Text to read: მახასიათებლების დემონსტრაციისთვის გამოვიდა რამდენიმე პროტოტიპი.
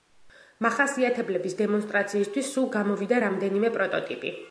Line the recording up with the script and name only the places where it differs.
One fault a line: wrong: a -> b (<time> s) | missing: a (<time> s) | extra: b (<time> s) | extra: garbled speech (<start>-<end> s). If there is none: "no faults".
extra: სულ (2.5 s)